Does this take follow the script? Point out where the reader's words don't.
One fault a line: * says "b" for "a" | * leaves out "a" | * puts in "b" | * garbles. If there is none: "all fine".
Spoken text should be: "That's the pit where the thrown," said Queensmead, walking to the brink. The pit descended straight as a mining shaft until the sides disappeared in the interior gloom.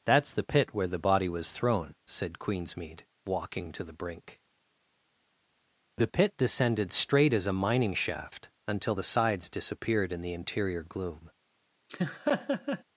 * puts in "body was"